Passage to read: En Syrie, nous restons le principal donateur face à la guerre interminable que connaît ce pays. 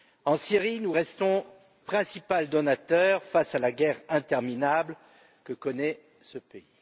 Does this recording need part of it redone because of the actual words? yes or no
yes